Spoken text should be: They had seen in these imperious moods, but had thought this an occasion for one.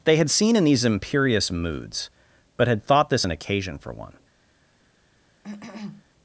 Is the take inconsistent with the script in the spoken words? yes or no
no